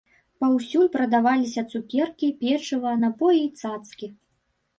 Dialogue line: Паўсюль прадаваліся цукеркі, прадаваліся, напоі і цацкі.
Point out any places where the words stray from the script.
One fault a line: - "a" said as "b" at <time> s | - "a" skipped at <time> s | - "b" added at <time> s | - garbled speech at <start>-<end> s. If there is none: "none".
- "прадаваліся" said as "печыва" at 2.4 s